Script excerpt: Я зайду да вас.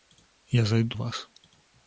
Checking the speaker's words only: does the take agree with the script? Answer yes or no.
no